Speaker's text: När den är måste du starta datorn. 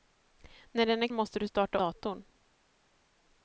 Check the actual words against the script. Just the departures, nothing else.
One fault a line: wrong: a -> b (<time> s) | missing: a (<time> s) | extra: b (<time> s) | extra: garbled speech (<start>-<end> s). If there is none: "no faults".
no faults